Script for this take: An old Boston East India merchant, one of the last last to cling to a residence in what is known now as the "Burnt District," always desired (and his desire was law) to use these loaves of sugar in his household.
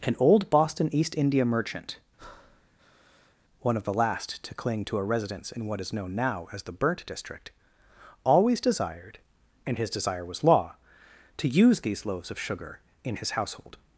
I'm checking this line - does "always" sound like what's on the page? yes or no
yes